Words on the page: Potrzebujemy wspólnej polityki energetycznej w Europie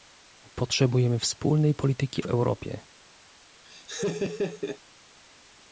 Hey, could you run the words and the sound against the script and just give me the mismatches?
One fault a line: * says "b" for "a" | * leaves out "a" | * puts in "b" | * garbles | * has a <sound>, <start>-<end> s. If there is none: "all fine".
* leaves out "energetycznej"
* has a laugh, 3.7-4.8 s